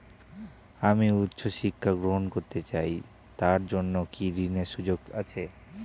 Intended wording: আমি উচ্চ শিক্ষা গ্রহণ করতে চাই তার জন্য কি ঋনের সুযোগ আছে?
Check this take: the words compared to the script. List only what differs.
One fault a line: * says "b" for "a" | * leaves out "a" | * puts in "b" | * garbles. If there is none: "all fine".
all fine